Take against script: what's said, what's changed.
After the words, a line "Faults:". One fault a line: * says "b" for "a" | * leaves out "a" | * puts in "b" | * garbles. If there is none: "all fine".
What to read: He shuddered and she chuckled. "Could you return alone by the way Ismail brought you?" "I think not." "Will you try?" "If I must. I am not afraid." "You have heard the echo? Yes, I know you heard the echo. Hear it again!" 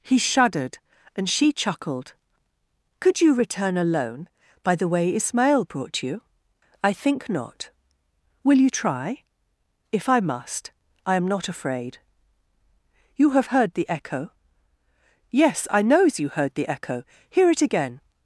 He shuddered and she chuckled. "Could you return alone by the way Ismail brought you?" "I think not." "Will you try?" "If I must. I am not afraid." "You have heard the echo? Yes, I knows you heard the echo. Hear it again!"
Faults:
* says "knows" for "know"